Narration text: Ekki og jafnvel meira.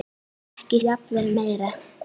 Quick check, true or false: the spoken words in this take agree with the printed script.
true